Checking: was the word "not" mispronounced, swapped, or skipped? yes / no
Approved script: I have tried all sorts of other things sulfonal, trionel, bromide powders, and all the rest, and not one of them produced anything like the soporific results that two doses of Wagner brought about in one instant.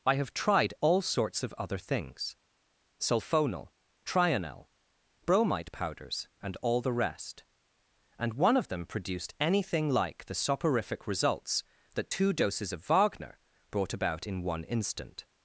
yes